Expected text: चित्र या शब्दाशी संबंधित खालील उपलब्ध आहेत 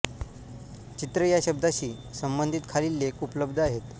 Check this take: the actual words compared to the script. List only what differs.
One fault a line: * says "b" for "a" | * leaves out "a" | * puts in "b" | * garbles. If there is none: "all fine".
* puts in "लेख"